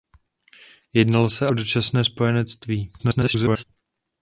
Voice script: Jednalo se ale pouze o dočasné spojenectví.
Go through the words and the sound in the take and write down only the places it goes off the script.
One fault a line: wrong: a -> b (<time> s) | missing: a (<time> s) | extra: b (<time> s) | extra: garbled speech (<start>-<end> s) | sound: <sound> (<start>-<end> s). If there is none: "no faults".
missing: ale pouze (1.5 s)
extra: garbled speech (3.0-3.6 s)